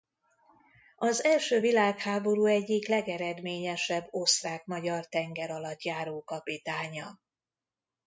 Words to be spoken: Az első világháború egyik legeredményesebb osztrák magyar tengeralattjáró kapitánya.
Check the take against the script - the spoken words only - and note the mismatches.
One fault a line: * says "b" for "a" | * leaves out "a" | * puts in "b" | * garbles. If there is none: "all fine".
all fine